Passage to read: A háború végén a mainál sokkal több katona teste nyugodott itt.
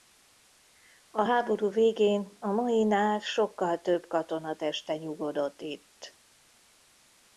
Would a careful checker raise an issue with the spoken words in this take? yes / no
no